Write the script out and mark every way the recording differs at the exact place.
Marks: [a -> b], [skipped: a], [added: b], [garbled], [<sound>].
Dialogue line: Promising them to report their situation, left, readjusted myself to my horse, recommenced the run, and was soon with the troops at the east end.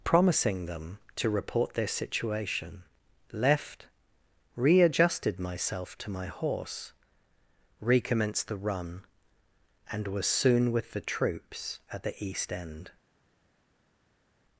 Promising them to report their situation, left, readjusted myself to my horse, recommenced the run, and was soon with the troops at the east end.